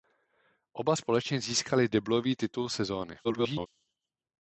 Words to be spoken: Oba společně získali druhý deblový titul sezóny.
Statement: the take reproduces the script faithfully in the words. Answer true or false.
false